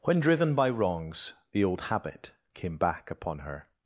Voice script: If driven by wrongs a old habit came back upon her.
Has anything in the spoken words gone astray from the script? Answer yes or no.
yes